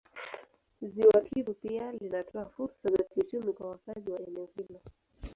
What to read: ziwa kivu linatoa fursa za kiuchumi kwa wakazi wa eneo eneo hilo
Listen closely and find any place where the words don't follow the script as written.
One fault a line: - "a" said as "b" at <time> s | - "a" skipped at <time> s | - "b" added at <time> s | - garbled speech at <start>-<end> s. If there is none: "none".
- "pia" added at 1.5 s
- "eneo" skipped at 4.5 s